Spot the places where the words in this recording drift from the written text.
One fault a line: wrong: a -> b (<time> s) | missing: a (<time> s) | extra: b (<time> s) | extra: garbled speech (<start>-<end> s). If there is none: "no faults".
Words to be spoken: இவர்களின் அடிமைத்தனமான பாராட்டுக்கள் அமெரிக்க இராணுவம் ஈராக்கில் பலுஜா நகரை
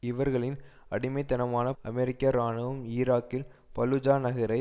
missing: பாராட்டுக்கள் (1.7 s)